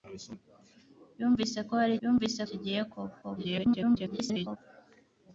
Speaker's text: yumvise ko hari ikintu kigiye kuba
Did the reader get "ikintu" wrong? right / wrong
wrong